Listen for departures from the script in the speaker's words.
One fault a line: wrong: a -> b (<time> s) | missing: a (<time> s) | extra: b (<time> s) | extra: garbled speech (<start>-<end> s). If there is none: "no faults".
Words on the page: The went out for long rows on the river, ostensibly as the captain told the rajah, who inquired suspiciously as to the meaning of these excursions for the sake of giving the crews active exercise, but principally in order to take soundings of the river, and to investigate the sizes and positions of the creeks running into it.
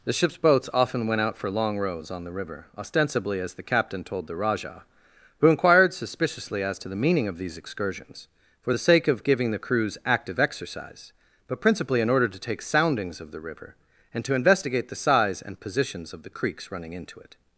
extra: ship's boats often (0.1 s)
wrong: sizes -> size (15.0 s)